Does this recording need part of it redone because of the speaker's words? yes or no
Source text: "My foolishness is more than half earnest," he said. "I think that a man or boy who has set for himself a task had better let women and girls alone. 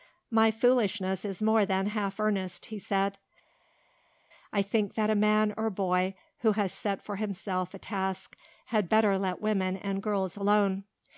no